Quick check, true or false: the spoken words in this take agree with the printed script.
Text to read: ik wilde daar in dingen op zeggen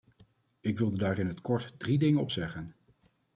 false